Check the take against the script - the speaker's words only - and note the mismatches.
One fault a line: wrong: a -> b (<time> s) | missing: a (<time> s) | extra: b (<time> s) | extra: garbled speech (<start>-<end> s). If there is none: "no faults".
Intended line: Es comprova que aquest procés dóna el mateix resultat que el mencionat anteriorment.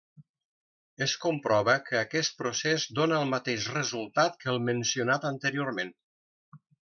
no faults